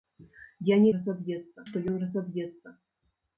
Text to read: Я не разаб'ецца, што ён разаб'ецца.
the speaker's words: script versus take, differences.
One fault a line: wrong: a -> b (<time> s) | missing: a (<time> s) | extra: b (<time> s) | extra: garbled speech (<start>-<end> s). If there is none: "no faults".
no faults